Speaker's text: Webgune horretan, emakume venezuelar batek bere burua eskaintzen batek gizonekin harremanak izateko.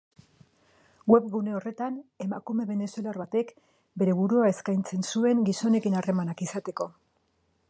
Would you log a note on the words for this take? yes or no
yes